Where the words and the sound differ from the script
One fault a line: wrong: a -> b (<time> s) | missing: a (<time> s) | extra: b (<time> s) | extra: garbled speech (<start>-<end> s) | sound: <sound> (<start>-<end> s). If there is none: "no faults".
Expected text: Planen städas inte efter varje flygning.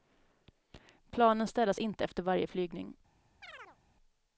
sound: chirp (3.4-3.8 s)